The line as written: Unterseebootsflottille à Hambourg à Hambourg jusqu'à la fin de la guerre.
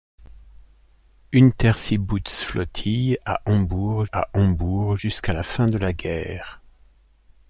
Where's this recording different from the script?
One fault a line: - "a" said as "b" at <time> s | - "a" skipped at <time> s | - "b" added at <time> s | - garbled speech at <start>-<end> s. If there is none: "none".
none